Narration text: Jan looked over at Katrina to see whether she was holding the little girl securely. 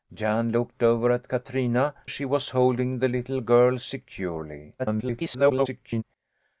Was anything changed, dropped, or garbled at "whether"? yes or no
yes